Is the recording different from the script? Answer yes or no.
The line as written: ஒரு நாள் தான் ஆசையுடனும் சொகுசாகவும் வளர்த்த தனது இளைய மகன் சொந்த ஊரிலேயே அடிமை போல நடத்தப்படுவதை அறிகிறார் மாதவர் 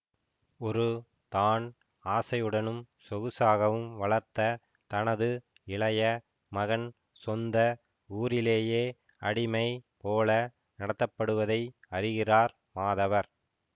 yes